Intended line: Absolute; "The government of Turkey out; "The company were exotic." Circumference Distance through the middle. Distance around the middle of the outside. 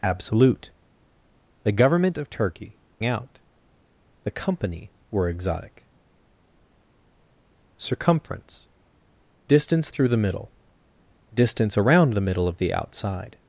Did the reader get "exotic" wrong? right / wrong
right